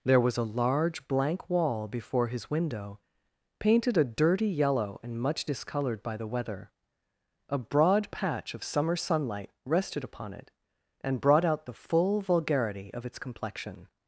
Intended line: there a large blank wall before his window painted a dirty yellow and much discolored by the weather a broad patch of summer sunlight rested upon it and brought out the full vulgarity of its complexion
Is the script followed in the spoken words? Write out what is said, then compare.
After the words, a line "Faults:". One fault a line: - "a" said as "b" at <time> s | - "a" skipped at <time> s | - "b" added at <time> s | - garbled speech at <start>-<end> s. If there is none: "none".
there was a large blank wall before his window painted a dirty yellow and much discolored by the weather a broad patch of summer sunlight rested upon it and brought out the full vulgarity of its complexion
Faults:
- "was" added at 0.2 s